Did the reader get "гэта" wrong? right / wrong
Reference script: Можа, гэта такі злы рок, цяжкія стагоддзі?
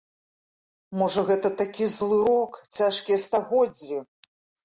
right